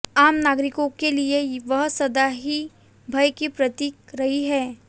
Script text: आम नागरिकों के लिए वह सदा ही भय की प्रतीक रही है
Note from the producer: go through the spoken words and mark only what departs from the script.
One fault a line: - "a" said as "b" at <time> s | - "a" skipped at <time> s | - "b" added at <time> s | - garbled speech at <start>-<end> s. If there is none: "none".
none